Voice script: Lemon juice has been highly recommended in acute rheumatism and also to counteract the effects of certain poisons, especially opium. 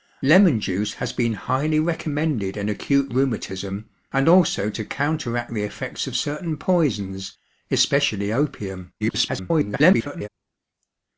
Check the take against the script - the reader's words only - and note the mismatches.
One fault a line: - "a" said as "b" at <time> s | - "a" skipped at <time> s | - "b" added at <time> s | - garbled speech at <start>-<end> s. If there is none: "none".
- garbled speech at 9.0-10.3 s